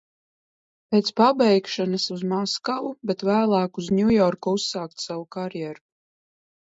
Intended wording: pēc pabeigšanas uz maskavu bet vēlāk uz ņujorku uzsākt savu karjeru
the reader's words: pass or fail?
pass